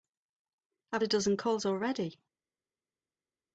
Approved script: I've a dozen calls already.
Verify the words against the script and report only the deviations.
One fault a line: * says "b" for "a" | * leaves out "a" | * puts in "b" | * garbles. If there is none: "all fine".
all fine